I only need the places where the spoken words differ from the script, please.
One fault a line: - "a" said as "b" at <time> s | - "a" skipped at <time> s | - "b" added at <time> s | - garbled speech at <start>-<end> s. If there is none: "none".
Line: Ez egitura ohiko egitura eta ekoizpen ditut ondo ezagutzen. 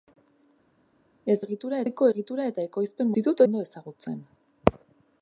none